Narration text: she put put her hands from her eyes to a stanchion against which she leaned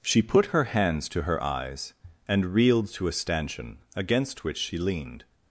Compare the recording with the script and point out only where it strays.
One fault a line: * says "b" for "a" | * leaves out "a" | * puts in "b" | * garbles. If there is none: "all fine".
* leaves out "put"
* says "to" for "from"
* puts in "and reeled"